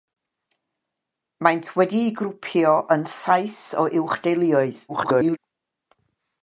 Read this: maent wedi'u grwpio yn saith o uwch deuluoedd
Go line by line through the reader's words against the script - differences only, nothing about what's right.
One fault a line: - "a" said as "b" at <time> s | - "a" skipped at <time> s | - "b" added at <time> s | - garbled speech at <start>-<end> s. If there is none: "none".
- garbled speech at 4.9-5.4 s